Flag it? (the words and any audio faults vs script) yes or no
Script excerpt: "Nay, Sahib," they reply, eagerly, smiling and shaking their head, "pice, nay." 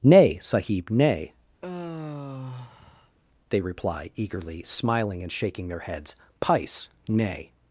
yes